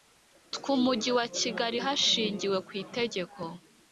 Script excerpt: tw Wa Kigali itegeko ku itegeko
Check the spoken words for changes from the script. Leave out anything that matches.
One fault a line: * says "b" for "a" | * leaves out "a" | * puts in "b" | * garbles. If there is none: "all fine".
* puts in "Umujyi"
* says "hashingiwe" for "itegeko"